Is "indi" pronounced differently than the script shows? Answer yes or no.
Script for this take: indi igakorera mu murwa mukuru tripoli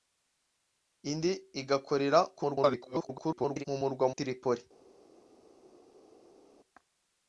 no